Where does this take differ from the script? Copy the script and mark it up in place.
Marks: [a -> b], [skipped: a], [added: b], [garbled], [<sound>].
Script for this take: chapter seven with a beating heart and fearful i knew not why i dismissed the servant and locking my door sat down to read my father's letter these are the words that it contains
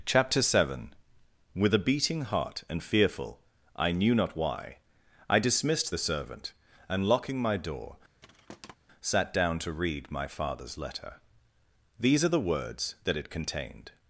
chapter seven with a beating heart and fearful i knew not why i dismissed the servant and locking my door [thud] sat down to read my father's letter these are the words that it [contains -> contained]